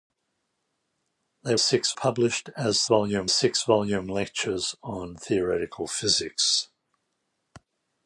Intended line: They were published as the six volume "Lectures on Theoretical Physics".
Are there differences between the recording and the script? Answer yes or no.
yes